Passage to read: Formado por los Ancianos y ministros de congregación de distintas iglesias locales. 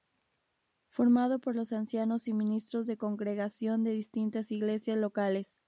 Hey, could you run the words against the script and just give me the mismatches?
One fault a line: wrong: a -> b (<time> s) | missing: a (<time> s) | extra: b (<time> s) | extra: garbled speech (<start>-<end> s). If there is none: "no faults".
no faults